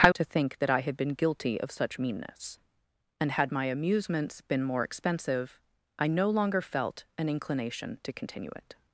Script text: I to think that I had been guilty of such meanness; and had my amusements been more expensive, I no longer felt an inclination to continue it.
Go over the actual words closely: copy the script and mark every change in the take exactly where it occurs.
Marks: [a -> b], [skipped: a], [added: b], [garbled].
I to think that I had been guilty of such meanness; and had my amusements been more expensive, I no longer felt an inclination to continue it.